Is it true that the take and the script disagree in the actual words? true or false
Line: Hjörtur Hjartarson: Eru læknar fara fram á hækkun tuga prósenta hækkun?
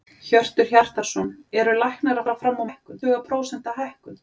false